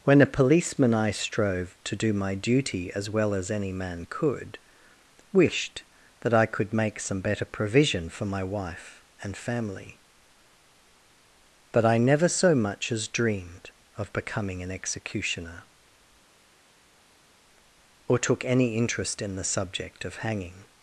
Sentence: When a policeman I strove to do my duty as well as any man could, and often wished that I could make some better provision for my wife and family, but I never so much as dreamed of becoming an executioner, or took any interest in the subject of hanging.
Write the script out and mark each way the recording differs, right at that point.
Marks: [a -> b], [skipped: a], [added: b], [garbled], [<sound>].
When a policeman I strove to do my duty as well as any man could, [skipped: and often] wished that I could make some better provision for my wife and family, but I never so much as dreamed of becoming an executioner, or took any interest in the subject of hanging.